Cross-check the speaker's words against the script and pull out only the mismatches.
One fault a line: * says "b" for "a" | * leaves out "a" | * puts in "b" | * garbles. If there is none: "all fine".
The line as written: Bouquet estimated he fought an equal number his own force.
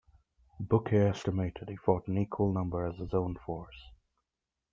* puts in "as"